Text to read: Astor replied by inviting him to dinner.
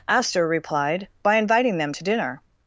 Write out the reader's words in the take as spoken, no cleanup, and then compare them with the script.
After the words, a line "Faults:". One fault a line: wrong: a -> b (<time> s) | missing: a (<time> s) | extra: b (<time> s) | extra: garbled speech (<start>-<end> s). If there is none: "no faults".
Astor replied by inviting them to dinner.
Faults:
wrong: him -> them (1.8 s)